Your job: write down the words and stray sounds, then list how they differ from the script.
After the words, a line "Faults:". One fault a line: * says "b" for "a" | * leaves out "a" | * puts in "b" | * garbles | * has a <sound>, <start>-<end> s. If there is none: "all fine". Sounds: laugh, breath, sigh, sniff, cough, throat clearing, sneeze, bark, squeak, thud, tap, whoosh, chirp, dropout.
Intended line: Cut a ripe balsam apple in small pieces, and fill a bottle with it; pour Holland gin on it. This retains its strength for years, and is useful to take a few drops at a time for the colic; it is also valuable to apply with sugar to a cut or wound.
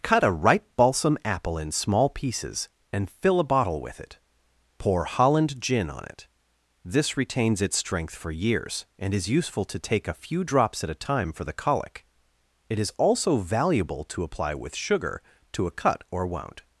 Cut a ripe balsam apple in small pieces, and fill a bottle with it; pour Holland gin on it. This retains its strength for years, and is useful to take a few drops at a time for the colic; it is also valuable to apply with sugar to a cut or wound.
Faults:
all fine